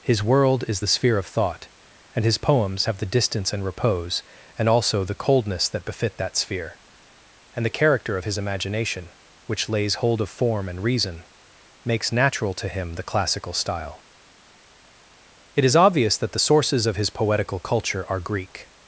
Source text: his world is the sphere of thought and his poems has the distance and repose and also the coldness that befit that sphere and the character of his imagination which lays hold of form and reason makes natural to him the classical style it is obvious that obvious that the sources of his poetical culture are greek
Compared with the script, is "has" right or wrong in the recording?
wrong